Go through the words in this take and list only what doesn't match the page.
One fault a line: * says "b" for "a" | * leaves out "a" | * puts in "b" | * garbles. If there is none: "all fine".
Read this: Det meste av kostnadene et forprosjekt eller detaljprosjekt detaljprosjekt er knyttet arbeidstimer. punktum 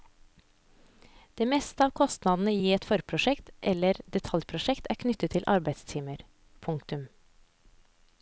* puts in "i"
* leaves out "detaljprosjekt"
* puts in "til"